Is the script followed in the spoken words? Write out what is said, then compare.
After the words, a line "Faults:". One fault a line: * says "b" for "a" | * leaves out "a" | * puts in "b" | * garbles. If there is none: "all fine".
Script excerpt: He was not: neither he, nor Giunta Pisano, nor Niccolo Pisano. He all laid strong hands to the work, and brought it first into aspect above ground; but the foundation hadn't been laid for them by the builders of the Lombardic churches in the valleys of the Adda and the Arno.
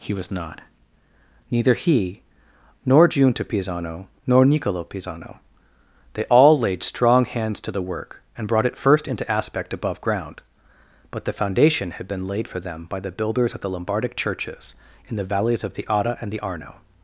He was not: neither he, nor Giunta Pisano, nor Niccolo Pisano. They all laid strong hands to the work, and brought it first into aspect above ground; but the foundation had been laid for them by the builders of the Lombardic churches in the valleys of the Adda and the Arno.
Faults:
* says "They" for "He"
* says "had" for "hadn't"